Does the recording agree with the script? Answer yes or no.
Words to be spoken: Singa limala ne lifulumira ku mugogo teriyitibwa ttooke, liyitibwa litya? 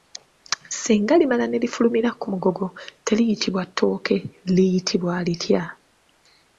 yes